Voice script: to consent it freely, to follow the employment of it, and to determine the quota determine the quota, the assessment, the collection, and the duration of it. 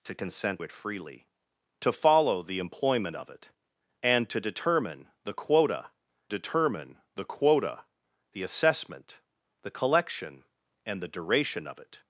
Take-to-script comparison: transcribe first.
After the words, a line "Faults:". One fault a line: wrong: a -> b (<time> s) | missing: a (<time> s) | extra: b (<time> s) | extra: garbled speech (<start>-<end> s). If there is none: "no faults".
to consent it freely, to follow the employment of it, and to determine the quota determine the quota, the assessment, the collection, and the duration of it.
Faults:
no faults